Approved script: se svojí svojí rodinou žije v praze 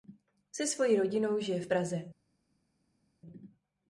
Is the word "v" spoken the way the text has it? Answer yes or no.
yes